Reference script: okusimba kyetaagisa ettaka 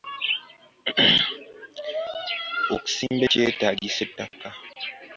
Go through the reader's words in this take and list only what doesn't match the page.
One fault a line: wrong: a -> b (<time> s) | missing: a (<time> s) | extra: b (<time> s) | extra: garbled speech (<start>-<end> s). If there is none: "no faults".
no faults